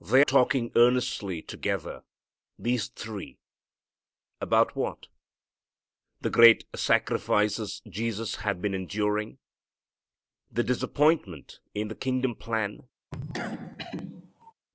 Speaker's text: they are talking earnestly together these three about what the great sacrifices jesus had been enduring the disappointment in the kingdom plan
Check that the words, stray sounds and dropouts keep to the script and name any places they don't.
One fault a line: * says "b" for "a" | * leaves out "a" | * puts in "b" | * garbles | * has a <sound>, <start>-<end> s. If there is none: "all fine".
* leaves out "are"
* has a cough, 13.1-14.5 s